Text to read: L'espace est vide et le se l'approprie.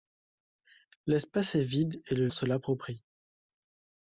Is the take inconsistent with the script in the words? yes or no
no